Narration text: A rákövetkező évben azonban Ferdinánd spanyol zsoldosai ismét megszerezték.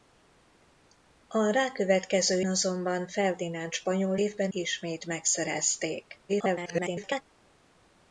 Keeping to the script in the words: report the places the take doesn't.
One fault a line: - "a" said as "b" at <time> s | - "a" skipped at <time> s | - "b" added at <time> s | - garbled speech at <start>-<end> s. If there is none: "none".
- "évben" skipped at 2.4 s
- "zsoldosai" said as "évben" at 4.2 s
- garbled speech at 6.3-7.2 s